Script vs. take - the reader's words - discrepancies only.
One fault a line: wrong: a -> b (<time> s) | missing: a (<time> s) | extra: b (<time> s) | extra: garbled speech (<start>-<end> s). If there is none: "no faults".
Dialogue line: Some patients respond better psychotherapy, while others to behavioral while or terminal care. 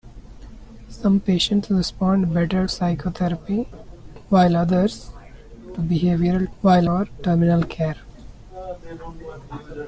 no faults